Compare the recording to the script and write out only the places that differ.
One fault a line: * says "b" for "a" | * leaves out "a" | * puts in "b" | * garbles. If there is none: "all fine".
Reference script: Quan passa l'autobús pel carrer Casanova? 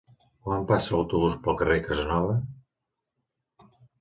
all fine